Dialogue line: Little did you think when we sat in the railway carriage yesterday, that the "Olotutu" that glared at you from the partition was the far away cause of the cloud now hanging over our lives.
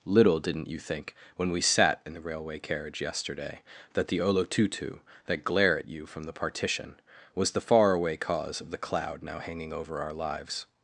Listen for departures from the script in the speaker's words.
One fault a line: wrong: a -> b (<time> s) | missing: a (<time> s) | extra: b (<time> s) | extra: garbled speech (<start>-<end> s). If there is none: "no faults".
wrong: did -> didn't (0.4 s)
wrong: glared -> glare (5.4 s)